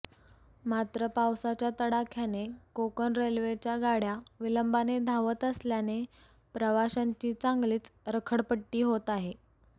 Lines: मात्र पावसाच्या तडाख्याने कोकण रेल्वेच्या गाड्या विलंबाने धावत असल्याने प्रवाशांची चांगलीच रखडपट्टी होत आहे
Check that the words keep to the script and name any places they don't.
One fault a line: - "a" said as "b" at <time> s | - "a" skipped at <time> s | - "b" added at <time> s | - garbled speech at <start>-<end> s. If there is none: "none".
none